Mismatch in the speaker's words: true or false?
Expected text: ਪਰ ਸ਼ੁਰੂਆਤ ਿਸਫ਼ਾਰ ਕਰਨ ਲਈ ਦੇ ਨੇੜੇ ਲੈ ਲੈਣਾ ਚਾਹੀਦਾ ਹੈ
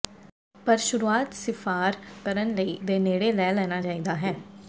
false